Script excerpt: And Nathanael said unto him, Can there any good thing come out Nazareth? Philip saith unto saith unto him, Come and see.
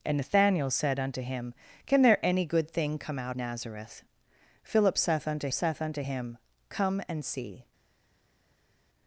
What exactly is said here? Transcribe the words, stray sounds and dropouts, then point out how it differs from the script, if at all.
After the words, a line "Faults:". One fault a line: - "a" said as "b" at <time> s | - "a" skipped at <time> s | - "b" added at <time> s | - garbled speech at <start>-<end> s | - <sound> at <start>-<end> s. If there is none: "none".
And Nathanael said unto him, Can there any good thing come out Nazareth? Philip saith unto saith unto him, Come and see.
Faults:
none